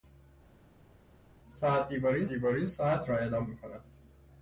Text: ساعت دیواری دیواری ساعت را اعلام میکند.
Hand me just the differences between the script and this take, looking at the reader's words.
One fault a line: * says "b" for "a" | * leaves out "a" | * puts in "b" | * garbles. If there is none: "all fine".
all fine